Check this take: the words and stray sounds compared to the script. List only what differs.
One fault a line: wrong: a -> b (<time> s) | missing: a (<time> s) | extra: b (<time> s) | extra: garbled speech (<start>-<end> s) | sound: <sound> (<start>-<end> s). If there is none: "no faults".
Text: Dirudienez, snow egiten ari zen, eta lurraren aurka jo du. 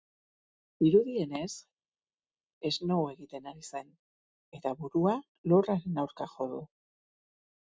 extra: burua (4.8 s)